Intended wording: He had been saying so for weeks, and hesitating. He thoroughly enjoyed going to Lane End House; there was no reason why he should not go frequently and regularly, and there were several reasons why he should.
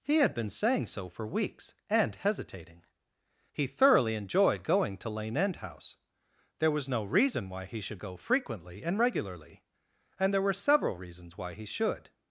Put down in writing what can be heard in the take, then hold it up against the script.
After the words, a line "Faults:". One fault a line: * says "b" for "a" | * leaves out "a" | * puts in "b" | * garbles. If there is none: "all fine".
He had been saying so for weeks, and hesitating. He thoroughly enjoyed going to Lane End House; there was no reason why he should go frequently and regularly, and there were several reasons why he should.
Faults:
* leaves out "not"